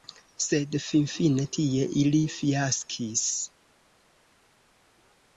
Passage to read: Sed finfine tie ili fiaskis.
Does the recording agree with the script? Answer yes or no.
yes